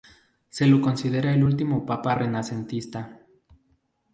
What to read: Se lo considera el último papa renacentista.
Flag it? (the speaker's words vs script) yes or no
no